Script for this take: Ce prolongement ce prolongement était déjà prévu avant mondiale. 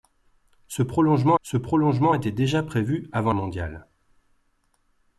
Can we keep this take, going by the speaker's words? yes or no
yes